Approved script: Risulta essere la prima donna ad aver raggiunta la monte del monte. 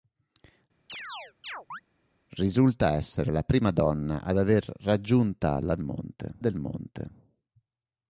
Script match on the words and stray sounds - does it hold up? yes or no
no